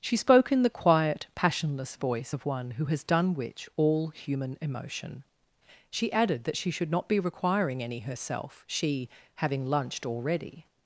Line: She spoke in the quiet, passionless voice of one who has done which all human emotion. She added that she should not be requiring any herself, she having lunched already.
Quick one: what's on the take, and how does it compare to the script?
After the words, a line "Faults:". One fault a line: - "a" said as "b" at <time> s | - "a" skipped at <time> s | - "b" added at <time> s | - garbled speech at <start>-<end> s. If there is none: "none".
She spoke in the quiet, passionless voice of one who has done which all human emotion. She added that she should not be requiring any herself, she having lunched already.
Faults:
none